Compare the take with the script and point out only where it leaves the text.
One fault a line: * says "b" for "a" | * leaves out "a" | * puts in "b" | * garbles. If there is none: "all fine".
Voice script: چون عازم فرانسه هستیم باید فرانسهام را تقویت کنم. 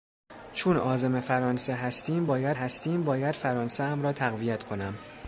* puts in "هستیم باید"